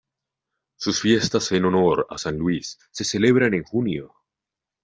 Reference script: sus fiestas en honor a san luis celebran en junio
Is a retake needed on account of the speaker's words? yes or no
yes